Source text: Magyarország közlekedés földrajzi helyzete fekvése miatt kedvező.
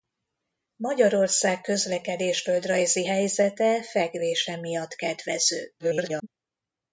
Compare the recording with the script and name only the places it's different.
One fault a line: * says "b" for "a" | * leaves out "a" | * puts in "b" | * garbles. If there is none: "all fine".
* garbles